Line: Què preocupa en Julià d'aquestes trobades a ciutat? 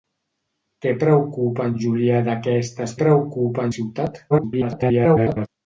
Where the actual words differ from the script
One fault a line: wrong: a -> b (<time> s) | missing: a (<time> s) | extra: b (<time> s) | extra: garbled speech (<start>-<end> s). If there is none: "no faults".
wrong: trobades -> preocupa (3.0 s)
extra: garbled speech (4.3-5.5 s)